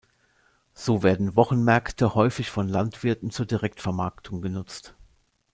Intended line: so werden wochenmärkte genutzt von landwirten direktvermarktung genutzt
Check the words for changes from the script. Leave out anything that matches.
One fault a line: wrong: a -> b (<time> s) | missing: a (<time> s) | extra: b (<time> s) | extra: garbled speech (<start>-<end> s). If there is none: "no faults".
wrong: genutzt -> häufig (2.1 s)
extra: zur (3.3 s)